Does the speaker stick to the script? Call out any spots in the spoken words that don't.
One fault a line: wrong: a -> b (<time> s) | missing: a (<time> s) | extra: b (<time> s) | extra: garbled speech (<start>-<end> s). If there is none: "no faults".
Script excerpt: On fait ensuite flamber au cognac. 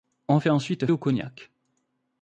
missing: flamber (0.9 s)